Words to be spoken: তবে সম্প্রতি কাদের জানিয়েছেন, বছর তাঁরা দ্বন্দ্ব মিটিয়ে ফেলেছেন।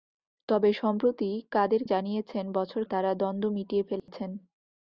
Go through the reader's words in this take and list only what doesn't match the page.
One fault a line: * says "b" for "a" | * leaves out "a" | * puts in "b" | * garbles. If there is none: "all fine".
all fine